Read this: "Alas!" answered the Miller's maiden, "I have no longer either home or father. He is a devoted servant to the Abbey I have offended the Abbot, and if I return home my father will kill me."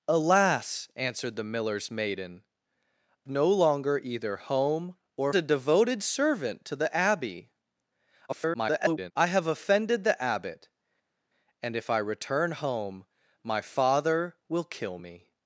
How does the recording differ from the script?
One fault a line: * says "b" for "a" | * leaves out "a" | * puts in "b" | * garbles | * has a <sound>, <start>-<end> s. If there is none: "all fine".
* leaves out "I have"
* leaves out "father He is"
* garbles